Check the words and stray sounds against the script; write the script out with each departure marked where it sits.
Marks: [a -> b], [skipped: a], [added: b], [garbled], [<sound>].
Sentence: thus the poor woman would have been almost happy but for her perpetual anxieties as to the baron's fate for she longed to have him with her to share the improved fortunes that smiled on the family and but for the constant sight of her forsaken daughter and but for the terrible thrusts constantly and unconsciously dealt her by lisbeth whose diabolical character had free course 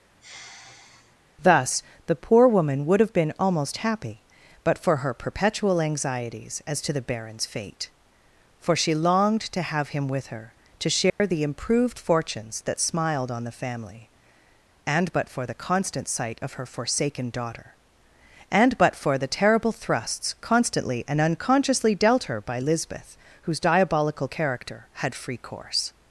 [sigh] thus the poor woman would have been almost happy but for her perpetual anxieties as to the baron's fate for she longed to have him with her to share [dropout] the improved fortunes that smiled on the family and but for the constant sight of her forsaken daughter and but for the terrible thrusts constantly and unconsciously dealt her by lisbeth whose diabolical character had free course